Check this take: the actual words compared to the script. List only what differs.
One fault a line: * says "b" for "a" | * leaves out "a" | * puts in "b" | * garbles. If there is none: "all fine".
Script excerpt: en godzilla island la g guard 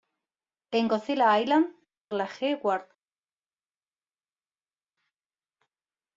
all fine